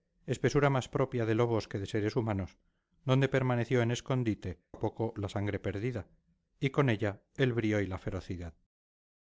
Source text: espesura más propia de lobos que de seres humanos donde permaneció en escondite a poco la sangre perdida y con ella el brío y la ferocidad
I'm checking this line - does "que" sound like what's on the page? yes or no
yes